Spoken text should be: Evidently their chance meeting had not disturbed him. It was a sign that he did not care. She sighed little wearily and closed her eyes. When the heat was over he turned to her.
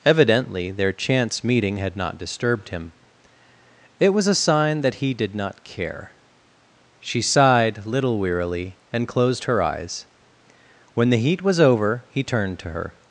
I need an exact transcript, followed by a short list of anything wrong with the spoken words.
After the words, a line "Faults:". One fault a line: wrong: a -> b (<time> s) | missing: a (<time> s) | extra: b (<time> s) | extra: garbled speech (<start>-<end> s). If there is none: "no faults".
Evidently their chance meeting had not disturbed him. It was a sign that he did not care. She sighed little wearily and closed her eyes. When the heat was over he turned to her.
Faults:
no faults